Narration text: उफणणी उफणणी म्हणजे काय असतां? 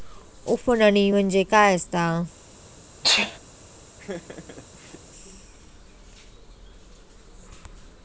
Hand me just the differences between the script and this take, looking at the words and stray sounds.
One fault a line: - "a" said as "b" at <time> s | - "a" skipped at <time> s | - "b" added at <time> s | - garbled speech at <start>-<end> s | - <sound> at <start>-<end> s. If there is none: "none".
- "उफणणी" skipped at 1.1 s
- sneeze at 3.0-3.4 s
- laugh at 4.0-5.0 s